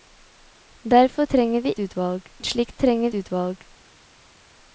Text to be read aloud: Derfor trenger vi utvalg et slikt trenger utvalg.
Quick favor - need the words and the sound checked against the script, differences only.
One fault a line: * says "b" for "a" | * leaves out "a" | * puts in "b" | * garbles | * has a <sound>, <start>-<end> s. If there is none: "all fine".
all fine